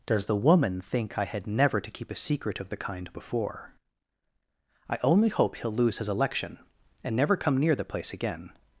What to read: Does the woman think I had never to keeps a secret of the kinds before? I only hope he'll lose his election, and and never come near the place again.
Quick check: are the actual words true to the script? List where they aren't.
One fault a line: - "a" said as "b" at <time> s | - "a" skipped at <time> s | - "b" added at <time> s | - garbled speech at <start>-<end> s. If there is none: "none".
- "keeps" said as "keep" at 1.9 s
- "kinds" said as "kind" at 2.8 s
- "and" skipped at 7.2 s